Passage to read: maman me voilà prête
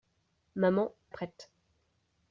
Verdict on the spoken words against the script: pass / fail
fail